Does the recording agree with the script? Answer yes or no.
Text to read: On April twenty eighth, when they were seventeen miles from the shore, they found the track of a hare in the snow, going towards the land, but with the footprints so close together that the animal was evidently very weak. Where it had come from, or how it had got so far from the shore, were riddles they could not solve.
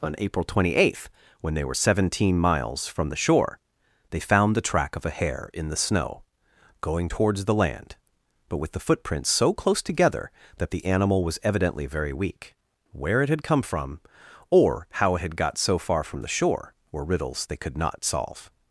yes